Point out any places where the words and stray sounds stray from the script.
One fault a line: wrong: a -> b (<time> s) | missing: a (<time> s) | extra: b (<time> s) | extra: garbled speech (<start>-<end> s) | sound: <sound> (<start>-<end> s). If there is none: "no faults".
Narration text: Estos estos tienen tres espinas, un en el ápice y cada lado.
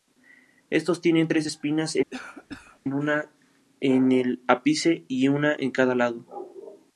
missing: estos (1.0 s)
sound: cough (2.1-2.8 s)
wrong: un -> una (2.9 s)
extra: una en (5.3 s)